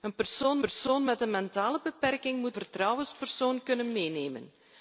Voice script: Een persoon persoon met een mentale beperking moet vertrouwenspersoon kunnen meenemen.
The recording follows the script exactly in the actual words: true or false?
true